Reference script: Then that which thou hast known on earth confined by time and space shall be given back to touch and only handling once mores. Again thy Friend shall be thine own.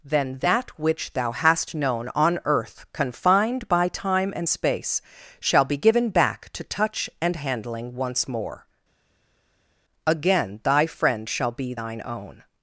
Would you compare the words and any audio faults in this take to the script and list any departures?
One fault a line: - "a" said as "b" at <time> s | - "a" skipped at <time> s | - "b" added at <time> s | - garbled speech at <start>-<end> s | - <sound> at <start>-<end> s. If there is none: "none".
- "only" skipped at 7.3 s
- "mores" said as "more" at 8.3 s